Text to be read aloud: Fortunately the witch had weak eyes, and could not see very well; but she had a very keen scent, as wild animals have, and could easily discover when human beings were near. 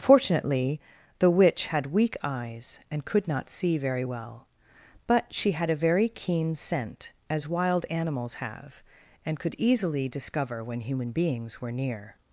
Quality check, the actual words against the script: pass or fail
pass